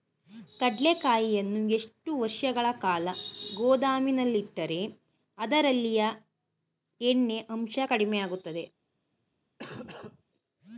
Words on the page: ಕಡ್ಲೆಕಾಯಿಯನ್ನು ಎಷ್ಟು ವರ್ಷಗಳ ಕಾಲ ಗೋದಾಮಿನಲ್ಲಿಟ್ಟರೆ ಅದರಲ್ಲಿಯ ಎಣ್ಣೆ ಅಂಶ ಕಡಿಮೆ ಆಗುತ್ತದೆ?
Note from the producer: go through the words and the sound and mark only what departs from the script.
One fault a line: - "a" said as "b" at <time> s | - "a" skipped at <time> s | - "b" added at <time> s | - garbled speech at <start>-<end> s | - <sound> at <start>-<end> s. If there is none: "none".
- cough at 9.6-10.2 s